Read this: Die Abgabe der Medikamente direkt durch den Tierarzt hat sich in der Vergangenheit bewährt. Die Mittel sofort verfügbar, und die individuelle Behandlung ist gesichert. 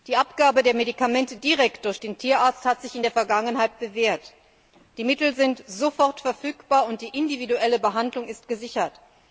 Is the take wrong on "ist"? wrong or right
right